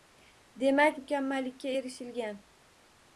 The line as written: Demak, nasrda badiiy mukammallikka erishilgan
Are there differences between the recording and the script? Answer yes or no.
yes